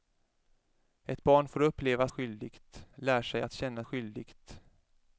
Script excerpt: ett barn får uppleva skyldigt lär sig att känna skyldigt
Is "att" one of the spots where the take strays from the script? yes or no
no